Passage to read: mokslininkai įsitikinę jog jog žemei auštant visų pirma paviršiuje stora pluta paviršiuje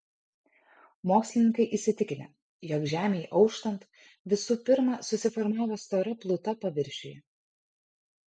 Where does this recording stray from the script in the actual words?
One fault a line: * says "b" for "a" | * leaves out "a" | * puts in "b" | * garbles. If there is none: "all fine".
* leaves out "jog"
* says "susiformavo" for "paviršiuje"